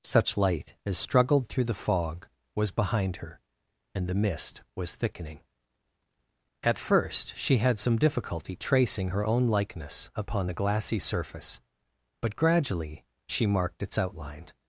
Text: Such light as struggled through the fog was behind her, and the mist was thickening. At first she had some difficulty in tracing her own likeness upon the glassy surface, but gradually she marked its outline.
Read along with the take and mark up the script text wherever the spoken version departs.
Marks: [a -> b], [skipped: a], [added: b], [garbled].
Such light as struggled through the fog was behind her, and the mist was thickening. At first she had some difficulty [skipped: in] tracing her own likeness upon the glassy surface, but gradually she marked its outline.